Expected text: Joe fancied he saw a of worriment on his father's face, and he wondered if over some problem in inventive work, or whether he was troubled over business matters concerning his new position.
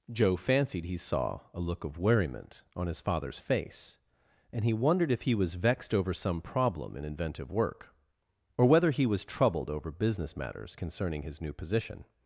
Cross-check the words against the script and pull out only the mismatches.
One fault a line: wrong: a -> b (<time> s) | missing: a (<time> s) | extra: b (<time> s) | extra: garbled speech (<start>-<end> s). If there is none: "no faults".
extra: look (1.6 s)
extra: he was vexed (5.2 s)